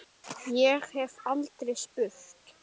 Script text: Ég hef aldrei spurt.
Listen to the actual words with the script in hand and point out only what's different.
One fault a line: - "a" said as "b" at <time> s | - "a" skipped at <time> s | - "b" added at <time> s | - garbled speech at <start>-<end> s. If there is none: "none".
none